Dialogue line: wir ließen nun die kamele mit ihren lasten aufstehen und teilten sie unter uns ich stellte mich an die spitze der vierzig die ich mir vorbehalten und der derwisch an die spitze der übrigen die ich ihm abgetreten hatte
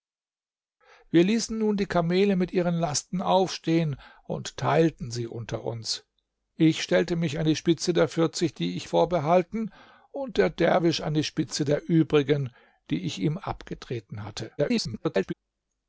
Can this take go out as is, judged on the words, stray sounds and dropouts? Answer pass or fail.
fail